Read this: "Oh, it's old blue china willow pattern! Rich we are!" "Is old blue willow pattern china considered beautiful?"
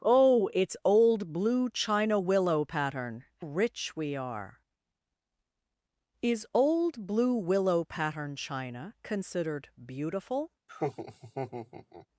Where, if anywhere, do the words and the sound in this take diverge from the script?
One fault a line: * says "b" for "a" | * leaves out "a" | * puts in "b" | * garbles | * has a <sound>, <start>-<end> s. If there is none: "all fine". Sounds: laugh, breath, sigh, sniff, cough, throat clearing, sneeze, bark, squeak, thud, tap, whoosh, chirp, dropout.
* has a laugh, 10.7-12.1 s